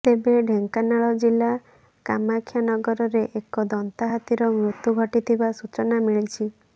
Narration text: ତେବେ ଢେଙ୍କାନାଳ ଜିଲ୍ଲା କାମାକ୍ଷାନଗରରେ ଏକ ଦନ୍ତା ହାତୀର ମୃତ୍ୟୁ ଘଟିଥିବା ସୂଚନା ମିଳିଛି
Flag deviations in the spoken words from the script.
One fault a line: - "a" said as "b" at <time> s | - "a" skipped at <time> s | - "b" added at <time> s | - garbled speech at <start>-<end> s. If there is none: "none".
none